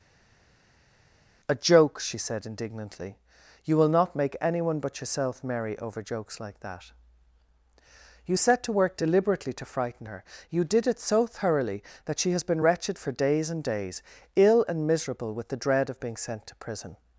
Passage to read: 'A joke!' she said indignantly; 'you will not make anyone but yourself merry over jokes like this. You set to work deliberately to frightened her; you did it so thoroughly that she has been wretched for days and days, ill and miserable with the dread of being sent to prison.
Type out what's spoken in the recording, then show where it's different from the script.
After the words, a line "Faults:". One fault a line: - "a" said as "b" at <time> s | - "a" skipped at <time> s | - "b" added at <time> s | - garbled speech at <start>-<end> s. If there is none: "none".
'A joke!' she said indignantly; 'you will not make anyone but yourself merry over jokes like that. You set to work deliberately to frighten her; you did it so thoroughly that she has been wretched for days and days, ill and miserable with the dread of being sent to prison.
Faults:
- "this" said as "that" at 6.6 s
- "frightened" said as "frighten" at 9.6 s